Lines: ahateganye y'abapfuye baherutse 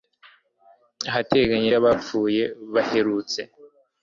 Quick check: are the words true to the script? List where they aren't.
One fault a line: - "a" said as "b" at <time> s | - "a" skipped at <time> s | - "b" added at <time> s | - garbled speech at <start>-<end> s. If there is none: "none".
none